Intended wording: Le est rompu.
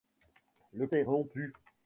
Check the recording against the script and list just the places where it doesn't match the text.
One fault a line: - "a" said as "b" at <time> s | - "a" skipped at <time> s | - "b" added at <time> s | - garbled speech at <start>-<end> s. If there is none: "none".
none